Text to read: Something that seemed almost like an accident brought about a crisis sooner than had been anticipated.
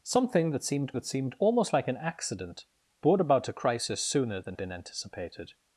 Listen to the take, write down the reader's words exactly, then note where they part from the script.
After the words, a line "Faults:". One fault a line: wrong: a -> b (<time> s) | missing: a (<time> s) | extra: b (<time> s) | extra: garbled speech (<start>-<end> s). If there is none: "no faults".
Something that seemed that seemed almost like an accident brought about a crisis sooner than been anticipated.
Faults:
extra: that seemed (0.9 s)
missing: had (4.6 s)